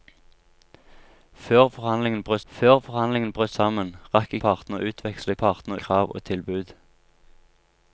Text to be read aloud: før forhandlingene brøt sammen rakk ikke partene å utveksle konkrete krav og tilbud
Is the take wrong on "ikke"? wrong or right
wrong